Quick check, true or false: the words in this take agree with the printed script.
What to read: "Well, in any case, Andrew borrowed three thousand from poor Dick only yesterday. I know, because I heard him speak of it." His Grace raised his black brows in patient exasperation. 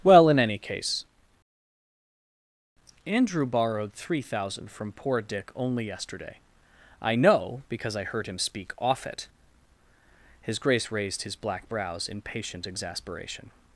false